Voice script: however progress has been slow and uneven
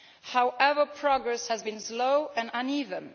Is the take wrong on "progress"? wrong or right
right